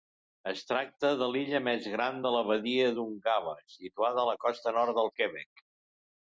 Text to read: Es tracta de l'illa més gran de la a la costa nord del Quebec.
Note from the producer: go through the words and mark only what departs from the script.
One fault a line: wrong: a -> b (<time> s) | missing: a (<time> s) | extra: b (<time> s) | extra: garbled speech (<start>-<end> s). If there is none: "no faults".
extra: badia d'Ungava situada (2.5 s)